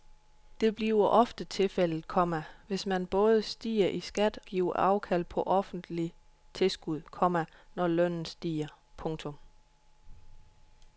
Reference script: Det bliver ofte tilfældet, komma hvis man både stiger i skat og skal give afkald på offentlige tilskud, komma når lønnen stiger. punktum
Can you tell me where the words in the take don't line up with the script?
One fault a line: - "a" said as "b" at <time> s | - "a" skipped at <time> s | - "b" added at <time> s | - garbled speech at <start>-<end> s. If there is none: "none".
- "og skal" skipped at 4.4 s